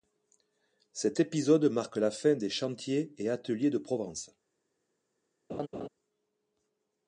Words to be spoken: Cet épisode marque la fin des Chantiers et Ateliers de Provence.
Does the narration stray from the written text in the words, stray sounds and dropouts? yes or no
yes